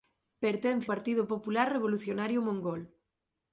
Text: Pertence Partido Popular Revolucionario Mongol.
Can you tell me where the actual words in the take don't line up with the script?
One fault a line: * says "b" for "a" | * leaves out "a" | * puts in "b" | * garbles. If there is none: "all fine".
all fine